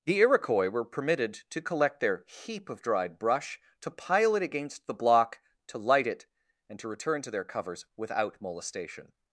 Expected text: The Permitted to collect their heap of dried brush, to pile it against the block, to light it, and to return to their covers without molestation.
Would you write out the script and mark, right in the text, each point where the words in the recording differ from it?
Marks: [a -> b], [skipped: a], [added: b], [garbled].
The [added: Iroquois were] Permitted to collect their heap of dried brush, to pile it against the block, to light it, and to return to their covers without molestation.